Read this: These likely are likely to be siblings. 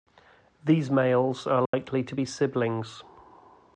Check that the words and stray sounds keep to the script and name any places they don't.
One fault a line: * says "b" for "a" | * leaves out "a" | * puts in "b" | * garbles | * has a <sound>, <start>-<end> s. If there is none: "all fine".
* says "males" for "likely"
* has a dropout, 1.7-1.7 s